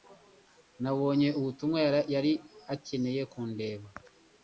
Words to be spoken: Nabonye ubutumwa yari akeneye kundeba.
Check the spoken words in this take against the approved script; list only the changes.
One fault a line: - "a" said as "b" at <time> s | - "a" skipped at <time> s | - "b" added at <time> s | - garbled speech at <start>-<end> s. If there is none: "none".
none